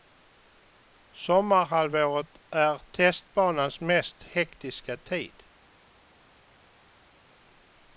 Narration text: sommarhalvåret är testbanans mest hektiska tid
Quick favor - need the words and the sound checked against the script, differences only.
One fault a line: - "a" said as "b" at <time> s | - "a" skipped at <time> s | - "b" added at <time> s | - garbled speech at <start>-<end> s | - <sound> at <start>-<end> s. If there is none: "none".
none